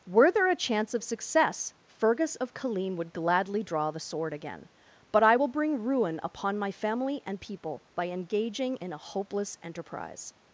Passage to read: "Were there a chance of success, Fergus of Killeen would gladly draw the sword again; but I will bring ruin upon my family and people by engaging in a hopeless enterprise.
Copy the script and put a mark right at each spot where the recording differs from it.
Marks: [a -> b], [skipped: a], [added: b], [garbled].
"Were there a chance of success, Fergus of Killeen would gladly draw the sword again; but I will bring ruin upon my family and people by engaging in a hopeless enterprise.